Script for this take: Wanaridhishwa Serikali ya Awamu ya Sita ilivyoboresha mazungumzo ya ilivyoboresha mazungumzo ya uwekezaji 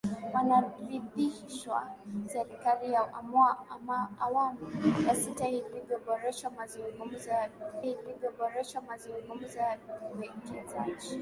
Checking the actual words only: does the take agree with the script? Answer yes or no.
yes